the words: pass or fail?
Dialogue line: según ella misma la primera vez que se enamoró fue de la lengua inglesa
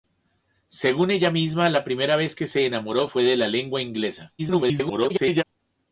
fail